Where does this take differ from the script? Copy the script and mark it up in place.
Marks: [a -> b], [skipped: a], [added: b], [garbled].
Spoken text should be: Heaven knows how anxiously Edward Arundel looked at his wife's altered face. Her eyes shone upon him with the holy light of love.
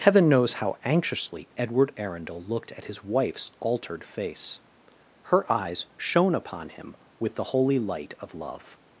Heaven knows how anxiously Edward Arundel looked at his wife's altered face. Her eyes shone upon him with the holy light of love.